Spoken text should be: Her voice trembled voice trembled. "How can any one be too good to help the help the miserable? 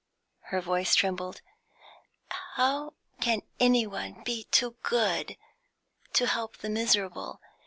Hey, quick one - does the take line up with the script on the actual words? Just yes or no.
no